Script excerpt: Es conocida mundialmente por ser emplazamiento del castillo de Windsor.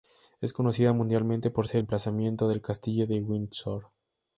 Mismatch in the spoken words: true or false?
false